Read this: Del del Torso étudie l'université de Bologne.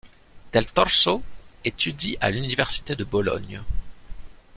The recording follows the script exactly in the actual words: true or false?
false